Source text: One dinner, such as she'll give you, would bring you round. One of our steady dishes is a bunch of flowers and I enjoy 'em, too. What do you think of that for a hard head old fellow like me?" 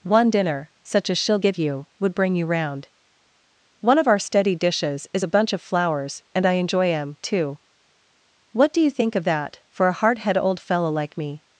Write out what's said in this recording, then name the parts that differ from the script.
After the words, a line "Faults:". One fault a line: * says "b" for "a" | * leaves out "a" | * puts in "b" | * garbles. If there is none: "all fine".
One dinner, such as she'll give you, would bring you round. One of our steady dishes is a bunch of flowers and I enjoy 'em, too. What do you think of that for a hard head old fellow like me?"
Faults:
all fine